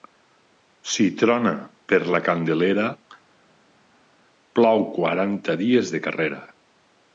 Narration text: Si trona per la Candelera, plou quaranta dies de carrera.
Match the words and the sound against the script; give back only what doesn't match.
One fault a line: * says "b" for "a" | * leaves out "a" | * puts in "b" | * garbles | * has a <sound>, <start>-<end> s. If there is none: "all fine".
all fine